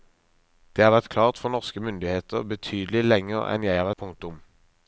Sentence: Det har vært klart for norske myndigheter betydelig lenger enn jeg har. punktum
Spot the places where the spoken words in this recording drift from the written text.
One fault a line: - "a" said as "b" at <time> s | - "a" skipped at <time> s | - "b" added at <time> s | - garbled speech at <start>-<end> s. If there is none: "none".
none